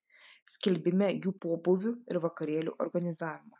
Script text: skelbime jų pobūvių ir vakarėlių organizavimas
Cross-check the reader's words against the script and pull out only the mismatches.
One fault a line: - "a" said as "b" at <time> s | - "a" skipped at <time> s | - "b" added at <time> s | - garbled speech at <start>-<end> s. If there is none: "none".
none